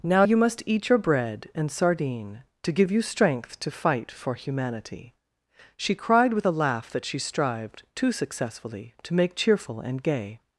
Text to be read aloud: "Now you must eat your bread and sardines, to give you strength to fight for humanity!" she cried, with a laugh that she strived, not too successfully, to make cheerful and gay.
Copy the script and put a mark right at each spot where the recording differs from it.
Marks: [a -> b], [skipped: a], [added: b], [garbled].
"Now you must eat your bread and [sardines, -> sardine] to give you strength to fight for humanity!" she cried, with a laugh that she strived, [skipped: not] too successfully, to make cheerful and gay.